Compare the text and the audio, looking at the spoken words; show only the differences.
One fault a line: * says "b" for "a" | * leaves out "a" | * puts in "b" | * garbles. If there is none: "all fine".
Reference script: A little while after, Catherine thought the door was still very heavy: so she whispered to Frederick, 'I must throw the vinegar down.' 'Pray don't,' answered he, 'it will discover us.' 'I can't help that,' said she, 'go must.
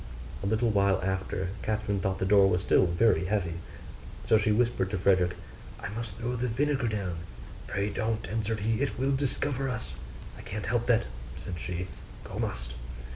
all fine